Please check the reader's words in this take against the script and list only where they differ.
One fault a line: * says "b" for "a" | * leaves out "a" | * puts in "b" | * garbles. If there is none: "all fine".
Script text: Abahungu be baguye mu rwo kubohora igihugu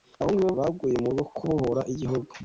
all fine